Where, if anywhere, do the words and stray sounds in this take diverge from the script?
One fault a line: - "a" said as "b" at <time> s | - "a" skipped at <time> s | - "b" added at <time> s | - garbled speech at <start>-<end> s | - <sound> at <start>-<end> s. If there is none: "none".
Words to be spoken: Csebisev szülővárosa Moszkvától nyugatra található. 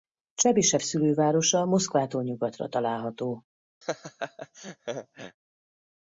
- laugh at 3.8-5.4 s